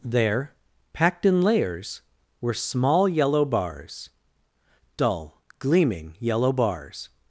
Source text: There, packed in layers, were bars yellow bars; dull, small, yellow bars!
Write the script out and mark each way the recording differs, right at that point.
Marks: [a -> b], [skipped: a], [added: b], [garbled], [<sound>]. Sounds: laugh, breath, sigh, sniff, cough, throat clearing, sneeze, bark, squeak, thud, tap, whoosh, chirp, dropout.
There, packed in layers, were [bars -> small] yellow bars; dull, [small, -> gleaming] yellow bars!